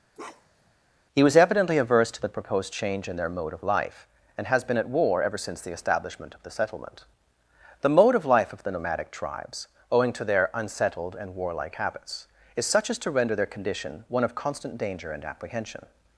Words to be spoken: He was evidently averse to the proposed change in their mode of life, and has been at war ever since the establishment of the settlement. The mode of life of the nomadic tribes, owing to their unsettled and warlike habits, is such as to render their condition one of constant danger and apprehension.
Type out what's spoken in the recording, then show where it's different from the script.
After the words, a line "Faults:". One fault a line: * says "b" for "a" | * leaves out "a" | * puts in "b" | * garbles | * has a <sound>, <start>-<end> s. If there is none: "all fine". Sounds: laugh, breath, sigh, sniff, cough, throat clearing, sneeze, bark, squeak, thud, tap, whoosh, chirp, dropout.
He was evidently averse to the proposed change in their mode of life, and has been at war ever since the establishment of the settlement. The mode of life of the nomadic tribes, owing to their unsettled and warlike habits, is such as to render their condition one of constant danger and apprehension.
Faults:
* has a bark, 0.1-0.7 s